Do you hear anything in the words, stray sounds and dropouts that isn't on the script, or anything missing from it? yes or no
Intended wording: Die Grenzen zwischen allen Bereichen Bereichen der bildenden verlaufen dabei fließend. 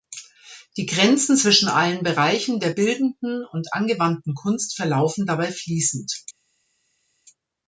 yes